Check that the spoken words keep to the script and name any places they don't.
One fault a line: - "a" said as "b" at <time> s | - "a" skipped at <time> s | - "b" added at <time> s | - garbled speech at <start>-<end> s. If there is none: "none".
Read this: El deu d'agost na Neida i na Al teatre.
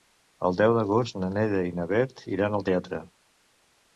- "Bet iran" added at 1.9 s